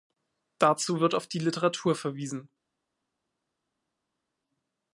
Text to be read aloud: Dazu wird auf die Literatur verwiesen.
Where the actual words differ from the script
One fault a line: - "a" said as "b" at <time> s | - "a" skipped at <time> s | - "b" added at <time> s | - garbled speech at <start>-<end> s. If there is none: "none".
none